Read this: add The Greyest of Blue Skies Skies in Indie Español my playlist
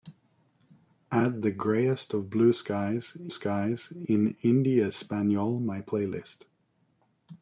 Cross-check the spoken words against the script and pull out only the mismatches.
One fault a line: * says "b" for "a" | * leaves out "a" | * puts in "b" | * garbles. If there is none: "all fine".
all fine